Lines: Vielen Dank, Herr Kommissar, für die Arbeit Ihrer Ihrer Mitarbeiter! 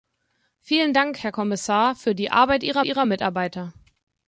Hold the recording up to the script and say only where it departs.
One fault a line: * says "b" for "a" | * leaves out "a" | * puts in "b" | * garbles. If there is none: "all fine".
all fine